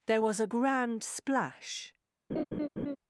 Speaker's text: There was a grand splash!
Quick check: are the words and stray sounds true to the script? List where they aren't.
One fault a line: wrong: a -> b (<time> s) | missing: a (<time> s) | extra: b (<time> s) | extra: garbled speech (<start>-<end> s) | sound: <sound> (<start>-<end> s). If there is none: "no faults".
sound: laugh (2.3-3.0 s)